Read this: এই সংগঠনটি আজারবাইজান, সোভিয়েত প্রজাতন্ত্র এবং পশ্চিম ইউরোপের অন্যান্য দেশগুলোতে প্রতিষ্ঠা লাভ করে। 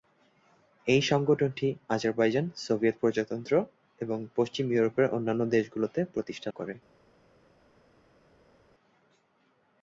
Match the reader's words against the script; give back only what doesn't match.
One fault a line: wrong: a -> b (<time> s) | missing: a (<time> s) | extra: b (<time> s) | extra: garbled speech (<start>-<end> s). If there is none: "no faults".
missing: লাভ (6.5 s)